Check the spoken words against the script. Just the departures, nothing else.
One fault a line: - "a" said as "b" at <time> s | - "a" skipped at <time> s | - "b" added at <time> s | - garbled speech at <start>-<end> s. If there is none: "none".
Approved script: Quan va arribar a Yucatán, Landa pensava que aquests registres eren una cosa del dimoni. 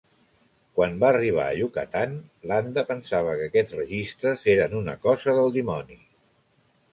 none